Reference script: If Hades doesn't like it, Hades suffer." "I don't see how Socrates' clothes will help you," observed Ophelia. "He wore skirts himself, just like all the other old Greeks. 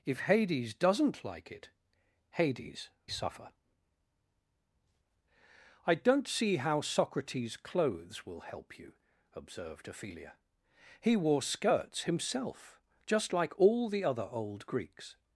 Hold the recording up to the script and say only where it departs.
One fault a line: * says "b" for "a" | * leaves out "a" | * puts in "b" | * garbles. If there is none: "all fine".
all fine